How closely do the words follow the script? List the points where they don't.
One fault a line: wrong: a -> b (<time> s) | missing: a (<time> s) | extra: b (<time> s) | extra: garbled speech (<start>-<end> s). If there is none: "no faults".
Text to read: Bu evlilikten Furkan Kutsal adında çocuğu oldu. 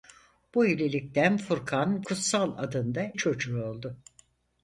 no faults